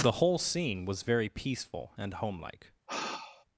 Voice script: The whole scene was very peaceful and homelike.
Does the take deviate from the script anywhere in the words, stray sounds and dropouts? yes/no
yes